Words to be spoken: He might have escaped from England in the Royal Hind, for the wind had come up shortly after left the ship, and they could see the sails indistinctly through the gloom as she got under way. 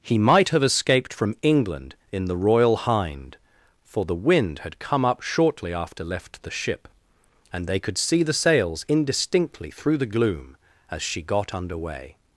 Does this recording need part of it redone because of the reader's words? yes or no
no